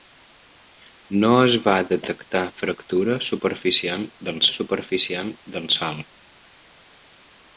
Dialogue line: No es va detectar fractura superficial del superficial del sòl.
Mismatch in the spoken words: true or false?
false